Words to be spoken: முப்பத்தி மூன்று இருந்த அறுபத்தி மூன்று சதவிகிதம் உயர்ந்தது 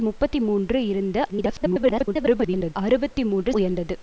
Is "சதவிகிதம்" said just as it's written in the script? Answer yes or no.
no